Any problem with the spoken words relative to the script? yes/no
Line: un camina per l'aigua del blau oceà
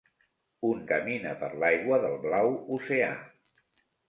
no